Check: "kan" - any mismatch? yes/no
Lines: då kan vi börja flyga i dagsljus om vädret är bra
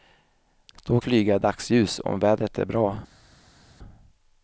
yes